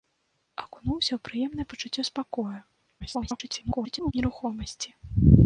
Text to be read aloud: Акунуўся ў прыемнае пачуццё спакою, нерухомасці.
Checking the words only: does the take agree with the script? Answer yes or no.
no